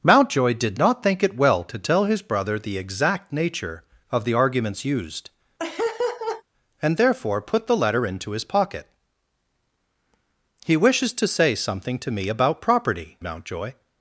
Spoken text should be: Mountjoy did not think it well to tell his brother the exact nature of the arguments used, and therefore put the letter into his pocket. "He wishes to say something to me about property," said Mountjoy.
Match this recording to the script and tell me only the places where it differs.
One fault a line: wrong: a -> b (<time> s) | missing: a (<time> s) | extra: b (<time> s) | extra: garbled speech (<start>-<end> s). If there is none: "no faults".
missing: said (13.2 s)